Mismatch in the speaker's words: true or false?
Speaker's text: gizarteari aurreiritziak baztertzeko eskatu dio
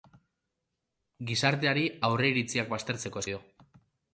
true